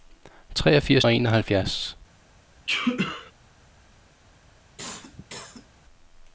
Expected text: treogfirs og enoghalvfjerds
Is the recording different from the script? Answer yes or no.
no